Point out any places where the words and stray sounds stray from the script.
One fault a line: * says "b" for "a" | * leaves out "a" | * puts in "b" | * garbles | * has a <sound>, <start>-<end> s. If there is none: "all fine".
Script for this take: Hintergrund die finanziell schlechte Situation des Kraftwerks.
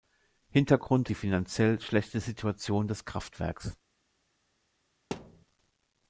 * has a thud, 5.1-5.5 s